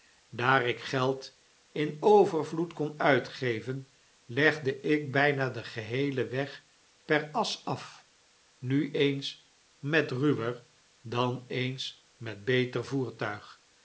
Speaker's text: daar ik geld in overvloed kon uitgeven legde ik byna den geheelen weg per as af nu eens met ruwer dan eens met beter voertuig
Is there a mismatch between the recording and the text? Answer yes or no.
no